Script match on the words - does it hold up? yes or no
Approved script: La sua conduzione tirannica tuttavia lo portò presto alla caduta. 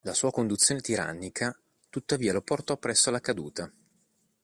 yes